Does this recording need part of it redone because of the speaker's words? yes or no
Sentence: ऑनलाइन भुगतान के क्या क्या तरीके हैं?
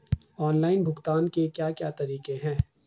no